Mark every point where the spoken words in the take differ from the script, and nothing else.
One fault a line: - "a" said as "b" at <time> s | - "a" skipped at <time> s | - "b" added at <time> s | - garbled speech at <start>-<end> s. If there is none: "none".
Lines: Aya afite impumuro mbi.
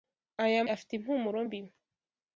none